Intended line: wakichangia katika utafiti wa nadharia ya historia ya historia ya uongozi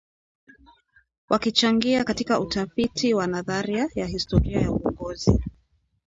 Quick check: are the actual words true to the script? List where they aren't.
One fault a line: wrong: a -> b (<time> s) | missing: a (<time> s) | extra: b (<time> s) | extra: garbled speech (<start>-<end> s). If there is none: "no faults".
missing: historia ya (4.7 s)